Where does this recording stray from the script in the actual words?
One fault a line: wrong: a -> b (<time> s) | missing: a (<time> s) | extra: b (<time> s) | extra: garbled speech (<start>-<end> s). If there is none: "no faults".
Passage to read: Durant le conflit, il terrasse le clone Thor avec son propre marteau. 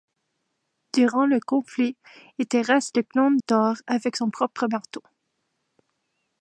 no faults